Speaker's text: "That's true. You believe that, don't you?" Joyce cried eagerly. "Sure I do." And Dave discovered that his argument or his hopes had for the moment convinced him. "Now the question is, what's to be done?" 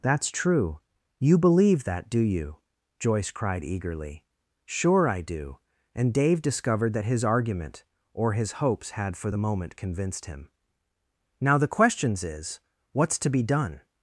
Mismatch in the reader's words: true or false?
true